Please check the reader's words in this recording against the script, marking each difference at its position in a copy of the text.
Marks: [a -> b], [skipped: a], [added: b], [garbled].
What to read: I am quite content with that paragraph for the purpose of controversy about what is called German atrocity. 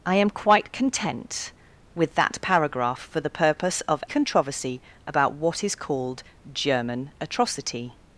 I am quite content with that paragraph for the purpose of controversy about what is called German atrocity.